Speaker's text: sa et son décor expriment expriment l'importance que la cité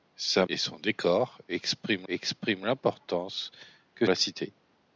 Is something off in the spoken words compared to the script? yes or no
no